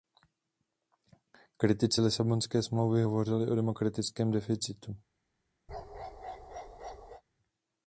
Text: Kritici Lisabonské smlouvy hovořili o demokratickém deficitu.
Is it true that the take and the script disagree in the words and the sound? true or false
true